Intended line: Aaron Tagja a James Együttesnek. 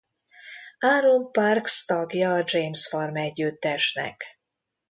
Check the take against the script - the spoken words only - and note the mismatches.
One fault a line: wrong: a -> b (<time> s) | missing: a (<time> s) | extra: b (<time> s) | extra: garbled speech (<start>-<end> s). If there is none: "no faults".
extra: Parks (1.3 s)
extra: Farm (2.9 s)